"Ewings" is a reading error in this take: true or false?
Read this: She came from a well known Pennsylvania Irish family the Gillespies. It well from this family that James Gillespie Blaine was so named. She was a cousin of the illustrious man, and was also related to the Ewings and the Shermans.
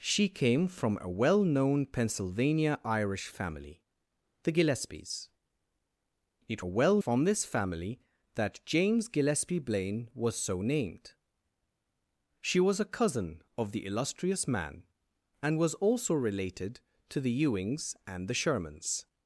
false